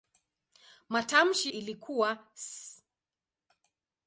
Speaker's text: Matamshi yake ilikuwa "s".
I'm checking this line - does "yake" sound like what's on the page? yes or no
no